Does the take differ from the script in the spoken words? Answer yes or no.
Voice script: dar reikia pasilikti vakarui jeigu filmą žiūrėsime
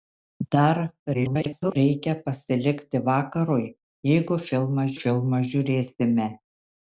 yes